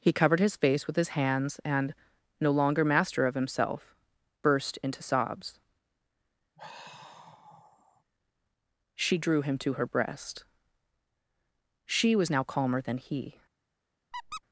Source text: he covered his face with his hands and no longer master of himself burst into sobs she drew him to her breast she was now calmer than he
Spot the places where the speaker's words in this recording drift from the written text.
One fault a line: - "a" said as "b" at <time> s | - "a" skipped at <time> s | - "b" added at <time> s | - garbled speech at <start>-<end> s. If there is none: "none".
none